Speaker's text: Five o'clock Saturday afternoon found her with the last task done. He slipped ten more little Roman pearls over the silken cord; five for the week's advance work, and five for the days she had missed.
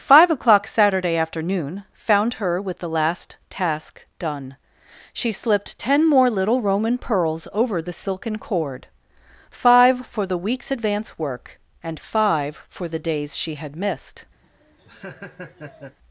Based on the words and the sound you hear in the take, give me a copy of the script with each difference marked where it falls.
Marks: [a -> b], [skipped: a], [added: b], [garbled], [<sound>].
Five o'clock Saturday afternoon found her with the last task done. [He -> She] slipped ten more little Roman pearls over the silken cord; five for the week's advance work, and five for the days she had missed. [laugh]